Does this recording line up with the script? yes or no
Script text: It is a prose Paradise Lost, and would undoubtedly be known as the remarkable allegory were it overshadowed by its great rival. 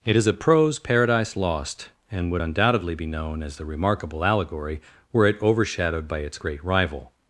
yes